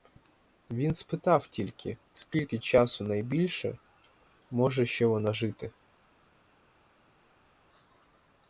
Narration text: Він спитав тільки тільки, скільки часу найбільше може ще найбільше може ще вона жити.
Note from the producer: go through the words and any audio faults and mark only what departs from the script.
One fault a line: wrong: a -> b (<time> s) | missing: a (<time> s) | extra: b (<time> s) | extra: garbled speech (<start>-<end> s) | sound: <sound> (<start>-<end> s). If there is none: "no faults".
missing: тільки (2.0 s)
missing: найбільше може ще (5.0 s)